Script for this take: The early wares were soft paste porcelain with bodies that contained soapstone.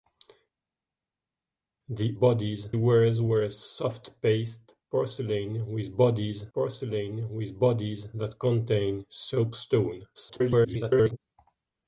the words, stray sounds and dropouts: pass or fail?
fail